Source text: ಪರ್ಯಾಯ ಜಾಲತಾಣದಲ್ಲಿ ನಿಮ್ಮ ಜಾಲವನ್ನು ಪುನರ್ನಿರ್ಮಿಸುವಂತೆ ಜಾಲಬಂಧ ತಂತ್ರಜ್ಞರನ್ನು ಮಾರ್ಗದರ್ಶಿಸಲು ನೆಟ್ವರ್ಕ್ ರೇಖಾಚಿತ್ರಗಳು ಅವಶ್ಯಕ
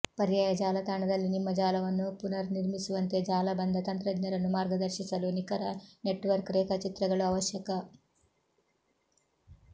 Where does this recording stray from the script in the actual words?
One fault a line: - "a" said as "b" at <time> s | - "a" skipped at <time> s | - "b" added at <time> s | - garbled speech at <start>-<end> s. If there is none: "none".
- "ನಿಖರ" added at 5.4 s